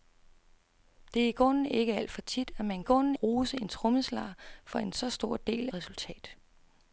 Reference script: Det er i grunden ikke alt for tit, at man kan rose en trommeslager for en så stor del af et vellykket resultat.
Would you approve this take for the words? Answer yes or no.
no